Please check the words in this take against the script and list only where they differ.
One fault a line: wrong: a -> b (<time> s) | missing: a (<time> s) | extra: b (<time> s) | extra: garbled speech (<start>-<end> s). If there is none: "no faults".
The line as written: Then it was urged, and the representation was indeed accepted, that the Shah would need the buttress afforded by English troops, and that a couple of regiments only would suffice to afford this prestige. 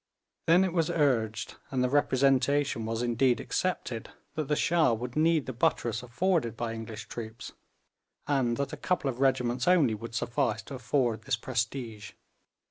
no faults